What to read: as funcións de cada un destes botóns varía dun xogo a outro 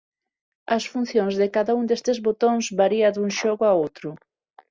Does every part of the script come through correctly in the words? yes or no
yes